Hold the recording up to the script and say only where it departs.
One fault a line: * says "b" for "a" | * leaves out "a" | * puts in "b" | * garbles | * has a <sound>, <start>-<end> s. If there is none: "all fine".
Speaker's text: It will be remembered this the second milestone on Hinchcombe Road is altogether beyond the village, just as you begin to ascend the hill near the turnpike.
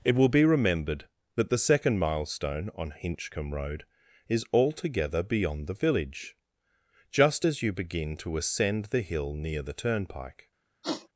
* says "that" for "this"
* has a sniff, 10.8-11.1 s